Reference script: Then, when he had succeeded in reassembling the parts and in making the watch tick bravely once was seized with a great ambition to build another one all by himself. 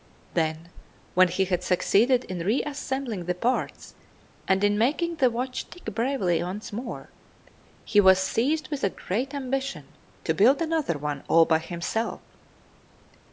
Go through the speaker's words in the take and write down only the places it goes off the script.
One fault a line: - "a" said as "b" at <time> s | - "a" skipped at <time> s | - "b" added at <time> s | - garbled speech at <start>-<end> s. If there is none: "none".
- "more he" added at 6.7 s